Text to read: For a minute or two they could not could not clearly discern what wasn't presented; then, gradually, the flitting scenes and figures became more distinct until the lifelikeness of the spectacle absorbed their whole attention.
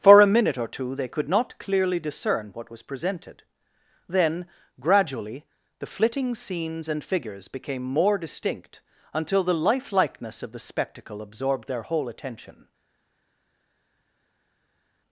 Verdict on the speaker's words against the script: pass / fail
fail